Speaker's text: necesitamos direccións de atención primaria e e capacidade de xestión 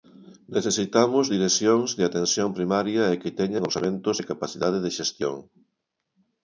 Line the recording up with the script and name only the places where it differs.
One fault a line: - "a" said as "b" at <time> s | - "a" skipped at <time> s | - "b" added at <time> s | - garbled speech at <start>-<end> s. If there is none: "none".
- "que teñan orzamentos" added at 3.2 s